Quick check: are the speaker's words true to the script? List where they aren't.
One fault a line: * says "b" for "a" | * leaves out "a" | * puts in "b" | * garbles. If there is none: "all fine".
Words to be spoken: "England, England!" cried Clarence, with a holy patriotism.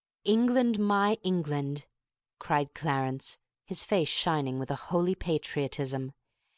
* puts in "my"
* puts in "his face shining"